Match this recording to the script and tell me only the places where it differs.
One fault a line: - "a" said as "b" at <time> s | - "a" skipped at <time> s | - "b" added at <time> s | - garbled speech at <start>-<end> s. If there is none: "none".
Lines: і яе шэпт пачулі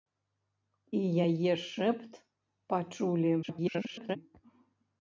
- garbled speech at 3.4-4.2 s